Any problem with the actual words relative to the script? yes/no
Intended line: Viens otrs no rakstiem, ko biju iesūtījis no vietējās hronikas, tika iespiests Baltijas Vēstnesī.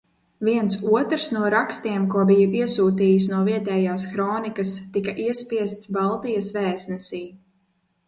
no